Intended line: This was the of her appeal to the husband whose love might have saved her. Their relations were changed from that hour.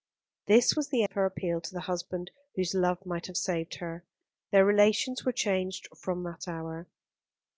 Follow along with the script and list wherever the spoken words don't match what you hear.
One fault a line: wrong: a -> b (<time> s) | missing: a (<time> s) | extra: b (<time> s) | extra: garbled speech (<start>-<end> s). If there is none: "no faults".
no faults